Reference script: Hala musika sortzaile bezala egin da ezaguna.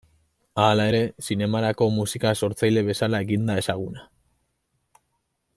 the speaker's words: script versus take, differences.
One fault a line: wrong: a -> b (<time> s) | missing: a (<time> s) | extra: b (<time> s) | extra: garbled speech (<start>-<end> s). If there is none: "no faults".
extra: ere zinemarako (0.9 s)